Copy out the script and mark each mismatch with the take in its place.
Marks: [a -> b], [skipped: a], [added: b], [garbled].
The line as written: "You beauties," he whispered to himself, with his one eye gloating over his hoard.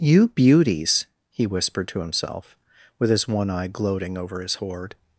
"You beauties," he whispered to himself, with his one eye gloating over his hoard.